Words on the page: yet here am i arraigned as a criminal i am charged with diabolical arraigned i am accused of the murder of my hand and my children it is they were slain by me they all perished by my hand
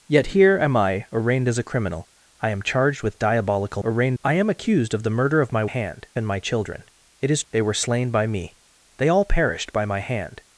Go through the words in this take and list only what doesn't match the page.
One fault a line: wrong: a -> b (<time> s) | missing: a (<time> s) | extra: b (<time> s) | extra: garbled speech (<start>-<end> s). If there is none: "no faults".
no faults